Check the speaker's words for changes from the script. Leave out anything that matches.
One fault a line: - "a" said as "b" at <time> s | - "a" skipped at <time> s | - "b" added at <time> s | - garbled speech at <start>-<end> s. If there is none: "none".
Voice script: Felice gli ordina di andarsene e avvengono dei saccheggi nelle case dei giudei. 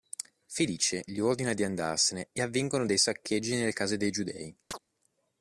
none